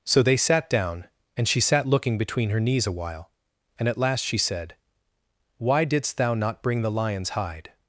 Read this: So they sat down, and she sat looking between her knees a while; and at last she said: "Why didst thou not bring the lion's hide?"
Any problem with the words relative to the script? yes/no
no